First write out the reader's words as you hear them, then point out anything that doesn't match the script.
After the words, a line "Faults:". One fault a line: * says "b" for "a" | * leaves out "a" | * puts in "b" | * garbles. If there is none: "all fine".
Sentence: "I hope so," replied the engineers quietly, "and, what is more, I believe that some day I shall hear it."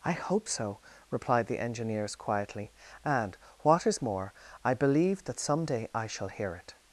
"I hope so," replied the engineers quietly, "and, what is more, I believe that some day I shall hear it."
Faults:
all fine